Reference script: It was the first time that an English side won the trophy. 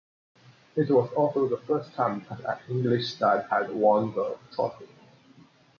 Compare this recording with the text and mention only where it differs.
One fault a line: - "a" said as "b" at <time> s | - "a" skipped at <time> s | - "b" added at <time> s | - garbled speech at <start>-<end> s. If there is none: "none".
- "also" added at 1.1 s
- "had" added at 3.5 s